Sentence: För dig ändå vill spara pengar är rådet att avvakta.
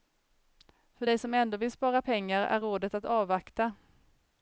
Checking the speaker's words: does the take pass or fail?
fail